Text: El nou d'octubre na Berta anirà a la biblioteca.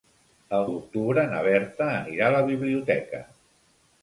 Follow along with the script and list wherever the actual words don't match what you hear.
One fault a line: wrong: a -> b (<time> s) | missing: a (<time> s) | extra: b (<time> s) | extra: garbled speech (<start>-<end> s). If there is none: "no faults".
missing: nou (0.6 s)